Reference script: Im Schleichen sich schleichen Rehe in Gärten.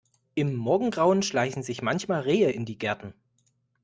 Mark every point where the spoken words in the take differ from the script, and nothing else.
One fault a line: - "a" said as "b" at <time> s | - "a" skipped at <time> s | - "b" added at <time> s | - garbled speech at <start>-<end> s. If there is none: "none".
- "Morgengrauen" added at 0.6 s
- "schleichen" said as "manchmal" at 1.8 s
- "die" added at 2.6 s